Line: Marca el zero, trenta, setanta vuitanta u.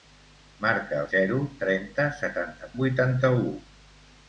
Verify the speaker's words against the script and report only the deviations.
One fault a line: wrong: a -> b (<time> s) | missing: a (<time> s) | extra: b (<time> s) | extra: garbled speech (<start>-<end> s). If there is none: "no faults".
no faults